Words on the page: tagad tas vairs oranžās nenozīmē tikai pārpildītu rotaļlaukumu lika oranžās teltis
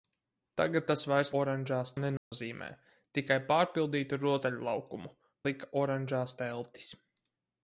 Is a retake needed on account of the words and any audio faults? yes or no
yes